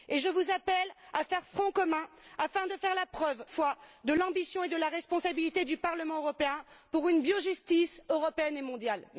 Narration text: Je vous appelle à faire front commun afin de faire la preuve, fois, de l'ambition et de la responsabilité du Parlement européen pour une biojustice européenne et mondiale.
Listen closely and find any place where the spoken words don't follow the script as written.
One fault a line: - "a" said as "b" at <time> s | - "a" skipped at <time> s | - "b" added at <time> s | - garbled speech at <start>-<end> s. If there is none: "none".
none